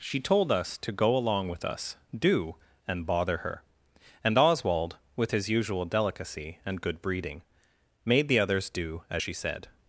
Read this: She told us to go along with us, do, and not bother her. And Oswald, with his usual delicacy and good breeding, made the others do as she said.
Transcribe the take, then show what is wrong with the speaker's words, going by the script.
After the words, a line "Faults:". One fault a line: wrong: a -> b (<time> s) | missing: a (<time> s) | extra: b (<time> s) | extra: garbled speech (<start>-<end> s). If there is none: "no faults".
She told us to go along with us, do, and bother her. And Oswald, with his usual delicacy and good breeding, made the others do as she said.
Faults:
missing: not (3.0 s)